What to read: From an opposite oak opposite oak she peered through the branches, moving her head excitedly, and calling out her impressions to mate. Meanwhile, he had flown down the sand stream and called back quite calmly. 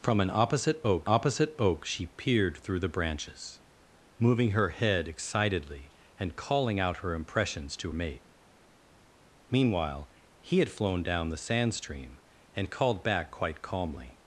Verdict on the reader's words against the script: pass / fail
pass